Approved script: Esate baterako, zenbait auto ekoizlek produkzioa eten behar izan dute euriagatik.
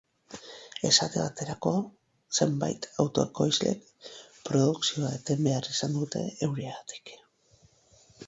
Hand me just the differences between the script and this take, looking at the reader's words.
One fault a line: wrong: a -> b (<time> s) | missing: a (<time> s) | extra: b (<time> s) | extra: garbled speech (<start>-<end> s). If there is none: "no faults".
no faults